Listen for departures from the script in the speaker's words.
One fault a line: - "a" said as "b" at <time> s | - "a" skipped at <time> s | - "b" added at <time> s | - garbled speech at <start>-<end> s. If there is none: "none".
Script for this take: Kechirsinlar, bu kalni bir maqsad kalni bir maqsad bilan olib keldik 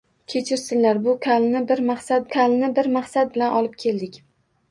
none